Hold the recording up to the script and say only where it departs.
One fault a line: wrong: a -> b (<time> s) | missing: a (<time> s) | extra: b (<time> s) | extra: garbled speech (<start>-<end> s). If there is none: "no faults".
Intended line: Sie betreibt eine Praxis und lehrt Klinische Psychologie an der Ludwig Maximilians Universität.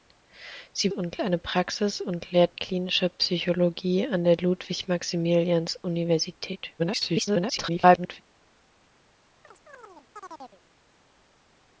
wrong: betreibt -> und (0.9 s)
extra: garbled speech (6.8-8.2 s)